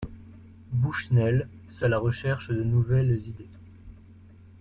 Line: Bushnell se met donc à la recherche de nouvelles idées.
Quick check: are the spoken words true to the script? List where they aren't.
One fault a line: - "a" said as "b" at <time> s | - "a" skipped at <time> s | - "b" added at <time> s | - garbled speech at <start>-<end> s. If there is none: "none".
- "met donc" skipped at 1.9 s